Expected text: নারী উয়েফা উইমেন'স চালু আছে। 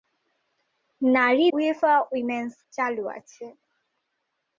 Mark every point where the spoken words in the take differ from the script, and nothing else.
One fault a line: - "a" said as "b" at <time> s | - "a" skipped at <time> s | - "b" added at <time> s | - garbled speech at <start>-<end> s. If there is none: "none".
none